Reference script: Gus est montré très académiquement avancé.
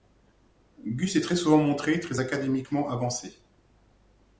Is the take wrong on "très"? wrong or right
right